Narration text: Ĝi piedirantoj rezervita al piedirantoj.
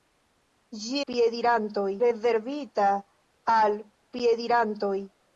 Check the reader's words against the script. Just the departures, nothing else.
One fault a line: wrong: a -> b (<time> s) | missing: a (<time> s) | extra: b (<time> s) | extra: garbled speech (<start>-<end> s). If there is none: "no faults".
no faults